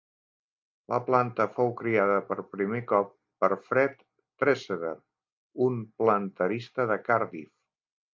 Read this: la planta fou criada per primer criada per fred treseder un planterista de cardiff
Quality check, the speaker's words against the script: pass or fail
fail